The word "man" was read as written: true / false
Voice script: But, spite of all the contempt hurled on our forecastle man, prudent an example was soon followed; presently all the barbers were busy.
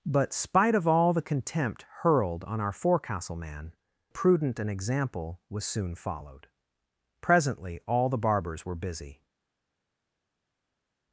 true